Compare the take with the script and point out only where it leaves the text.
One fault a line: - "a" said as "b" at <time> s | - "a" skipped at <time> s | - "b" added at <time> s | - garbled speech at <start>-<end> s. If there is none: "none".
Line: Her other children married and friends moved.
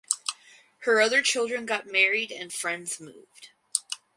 - "got" added at 1.6 s